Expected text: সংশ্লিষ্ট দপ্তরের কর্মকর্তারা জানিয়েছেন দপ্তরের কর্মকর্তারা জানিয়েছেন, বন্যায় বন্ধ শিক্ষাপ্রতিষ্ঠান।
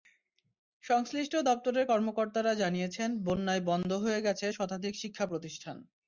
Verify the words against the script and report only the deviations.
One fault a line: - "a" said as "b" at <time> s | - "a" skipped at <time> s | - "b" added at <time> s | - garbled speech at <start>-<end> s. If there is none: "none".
- "দপ্তরের কর্মকর্তারা জানিয়েছেন বন্যায় বন্ধ" said as "বন্যায় বন্ধ হয়ে গেছে শতাধিক" at 3.3 s